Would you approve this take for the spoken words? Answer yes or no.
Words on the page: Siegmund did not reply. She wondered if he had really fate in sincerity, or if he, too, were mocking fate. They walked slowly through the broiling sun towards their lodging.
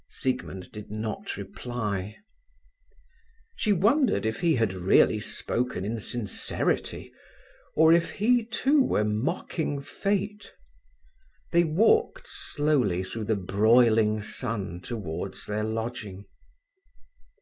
no